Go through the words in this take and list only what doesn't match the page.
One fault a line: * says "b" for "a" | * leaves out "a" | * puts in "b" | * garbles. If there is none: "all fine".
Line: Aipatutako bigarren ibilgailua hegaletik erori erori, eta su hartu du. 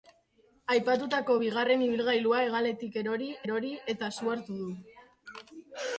all fine